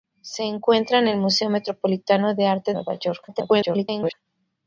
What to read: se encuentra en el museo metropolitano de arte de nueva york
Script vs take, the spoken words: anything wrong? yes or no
yes